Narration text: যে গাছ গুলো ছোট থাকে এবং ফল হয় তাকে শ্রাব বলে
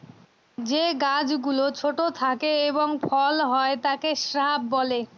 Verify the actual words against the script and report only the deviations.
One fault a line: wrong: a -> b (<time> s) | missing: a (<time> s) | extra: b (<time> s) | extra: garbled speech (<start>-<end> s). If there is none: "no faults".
no faults